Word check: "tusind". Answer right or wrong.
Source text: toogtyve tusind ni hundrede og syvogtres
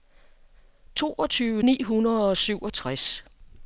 wrong